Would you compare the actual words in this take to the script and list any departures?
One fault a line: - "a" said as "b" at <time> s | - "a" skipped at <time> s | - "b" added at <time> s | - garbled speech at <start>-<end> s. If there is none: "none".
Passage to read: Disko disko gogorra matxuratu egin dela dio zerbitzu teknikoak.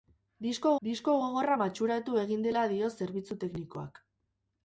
none